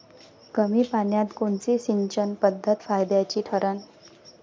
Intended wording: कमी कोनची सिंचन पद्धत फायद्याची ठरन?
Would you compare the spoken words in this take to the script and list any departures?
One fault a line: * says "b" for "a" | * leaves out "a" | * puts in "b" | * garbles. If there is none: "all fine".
* puts in "पान्यात"